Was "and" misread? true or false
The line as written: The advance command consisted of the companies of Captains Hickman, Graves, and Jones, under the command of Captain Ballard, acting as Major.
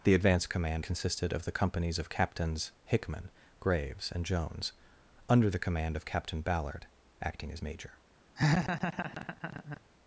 false